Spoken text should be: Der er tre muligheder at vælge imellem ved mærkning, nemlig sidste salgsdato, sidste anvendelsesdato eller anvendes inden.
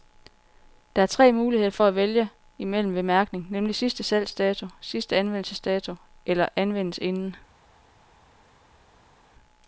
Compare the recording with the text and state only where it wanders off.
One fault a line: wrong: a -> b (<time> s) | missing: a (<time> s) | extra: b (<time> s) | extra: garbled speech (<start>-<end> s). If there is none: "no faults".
no faults